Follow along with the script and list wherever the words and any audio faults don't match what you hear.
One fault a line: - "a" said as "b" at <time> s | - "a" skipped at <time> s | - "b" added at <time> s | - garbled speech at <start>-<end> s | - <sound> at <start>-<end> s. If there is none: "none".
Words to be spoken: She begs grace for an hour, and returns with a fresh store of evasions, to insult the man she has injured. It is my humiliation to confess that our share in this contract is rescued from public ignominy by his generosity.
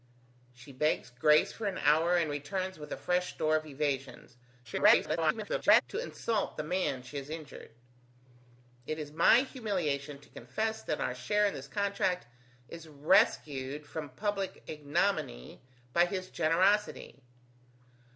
- garbled speech at 4.6-5.8 s